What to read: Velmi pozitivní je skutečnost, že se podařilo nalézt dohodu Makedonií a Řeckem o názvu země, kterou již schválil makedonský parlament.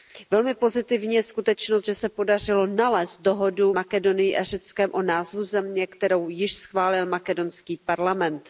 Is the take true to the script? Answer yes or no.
yes